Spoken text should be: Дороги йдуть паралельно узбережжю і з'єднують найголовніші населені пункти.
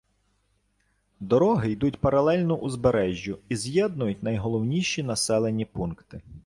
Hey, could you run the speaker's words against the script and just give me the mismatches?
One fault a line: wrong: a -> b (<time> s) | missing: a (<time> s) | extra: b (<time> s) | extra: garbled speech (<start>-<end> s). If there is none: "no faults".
no faults